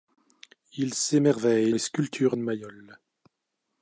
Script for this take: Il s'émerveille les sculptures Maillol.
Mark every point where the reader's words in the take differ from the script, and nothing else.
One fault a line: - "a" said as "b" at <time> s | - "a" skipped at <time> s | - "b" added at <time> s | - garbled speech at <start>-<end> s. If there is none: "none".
none